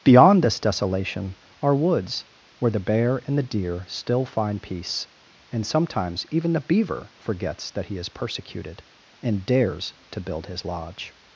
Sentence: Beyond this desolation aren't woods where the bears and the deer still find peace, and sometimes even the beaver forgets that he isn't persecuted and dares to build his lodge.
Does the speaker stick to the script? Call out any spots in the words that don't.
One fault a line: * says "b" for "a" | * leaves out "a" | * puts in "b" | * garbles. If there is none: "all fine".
* says "are" for "aren't"
* says "bear" for "bears"
* says "is" for "isn't"